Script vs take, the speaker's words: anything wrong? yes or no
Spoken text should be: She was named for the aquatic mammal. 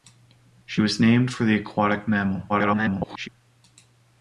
yes